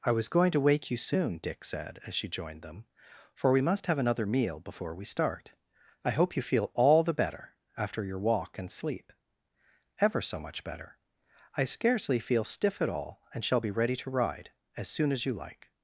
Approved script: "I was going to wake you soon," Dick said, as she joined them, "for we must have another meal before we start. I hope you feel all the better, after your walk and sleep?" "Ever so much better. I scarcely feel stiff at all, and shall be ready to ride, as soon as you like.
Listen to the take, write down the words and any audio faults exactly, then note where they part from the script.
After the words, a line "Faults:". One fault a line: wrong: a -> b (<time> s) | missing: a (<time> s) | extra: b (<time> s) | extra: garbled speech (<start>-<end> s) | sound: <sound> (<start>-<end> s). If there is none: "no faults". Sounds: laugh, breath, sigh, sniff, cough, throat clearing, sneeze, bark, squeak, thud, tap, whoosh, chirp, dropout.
"I was going to wake you soon," Dick said, as she joined them, "for we must have another meal before we start. I hope you feel all the better, after your walk and sleep?" "Ever so much better. I scarcely feel stiff at all, and shall be ready to ride, as soon as you like.
Faults:
no faults